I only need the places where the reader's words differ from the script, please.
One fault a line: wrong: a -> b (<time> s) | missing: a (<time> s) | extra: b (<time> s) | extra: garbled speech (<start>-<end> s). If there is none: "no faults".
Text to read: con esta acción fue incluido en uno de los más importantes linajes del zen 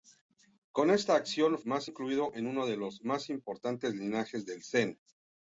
wrong: fue -> más (1.6 s)